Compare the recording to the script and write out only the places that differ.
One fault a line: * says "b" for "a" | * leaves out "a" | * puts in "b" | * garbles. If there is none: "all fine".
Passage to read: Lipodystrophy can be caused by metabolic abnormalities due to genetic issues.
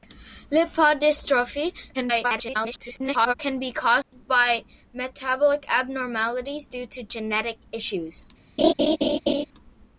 * garbles